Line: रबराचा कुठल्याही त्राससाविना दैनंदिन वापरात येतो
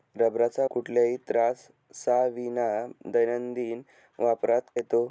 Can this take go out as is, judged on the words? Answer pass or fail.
pass